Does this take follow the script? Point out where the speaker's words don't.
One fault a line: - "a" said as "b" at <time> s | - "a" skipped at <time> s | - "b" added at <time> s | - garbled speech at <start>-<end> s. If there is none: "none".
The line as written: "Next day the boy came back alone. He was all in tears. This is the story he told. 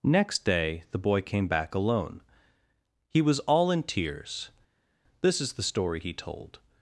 none